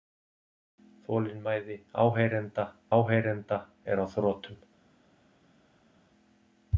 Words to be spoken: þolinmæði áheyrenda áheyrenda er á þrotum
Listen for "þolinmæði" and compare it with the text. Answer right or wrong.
right